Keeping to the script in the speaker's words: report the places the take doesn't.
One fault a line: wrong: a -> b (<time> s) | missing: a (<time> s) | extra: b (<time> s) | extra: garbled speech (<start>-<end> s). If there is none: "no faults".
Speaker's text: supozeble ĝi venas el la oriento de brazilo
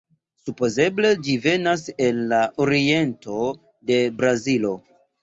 no faults